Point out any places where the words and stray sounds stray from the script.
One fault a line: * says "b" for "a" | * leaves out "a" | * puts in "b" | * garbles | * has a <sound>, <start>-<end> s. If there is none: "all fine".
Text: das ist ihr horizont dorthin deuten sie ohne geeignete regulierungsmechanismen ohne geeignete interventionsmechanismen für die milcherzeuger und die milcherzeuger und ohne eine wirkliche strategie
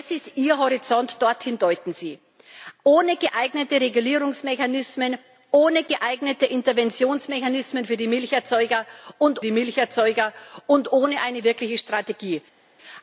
all fine